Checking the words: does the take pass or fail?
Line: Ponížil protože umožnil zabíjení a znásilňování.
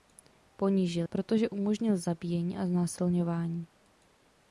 pass